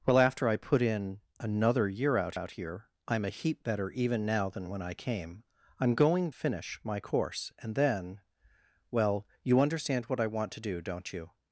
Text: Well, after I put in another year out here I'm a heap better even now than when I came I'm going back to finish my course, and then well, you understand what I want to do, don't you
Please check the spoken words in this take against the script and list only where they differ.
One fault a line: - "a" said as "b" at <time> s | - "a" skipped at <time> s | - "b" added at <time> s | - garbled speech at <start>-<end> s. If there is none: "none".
- "out" added at 2.3 s
- "back to" skipped at 6.3 s